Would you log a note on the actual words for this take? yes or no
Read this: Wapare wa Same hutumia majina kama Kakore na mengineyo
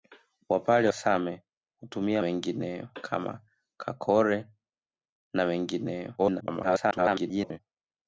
yes